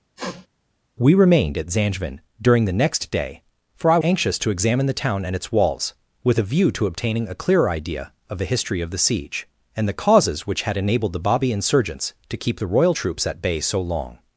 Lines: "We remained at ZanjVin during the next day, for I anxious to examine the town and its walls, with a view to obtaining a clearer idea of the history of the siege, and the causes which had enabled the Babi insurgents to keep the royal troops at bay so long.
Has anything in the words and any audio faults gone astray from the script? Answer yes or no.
yes